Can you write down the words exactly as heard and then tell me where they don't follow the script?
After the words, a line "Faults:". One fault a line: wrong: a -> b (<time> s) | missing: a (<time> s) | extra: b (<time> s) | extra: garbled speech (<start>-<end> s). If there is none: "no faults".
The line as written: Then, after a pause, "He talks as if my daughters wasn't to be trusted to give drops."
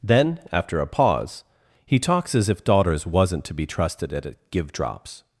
Then, after a pause, "He talks as if daughters wasn't to be trusted at give drops."
Faults:
missing: my (2.6 s)
wrong: to -> at (4.1 s)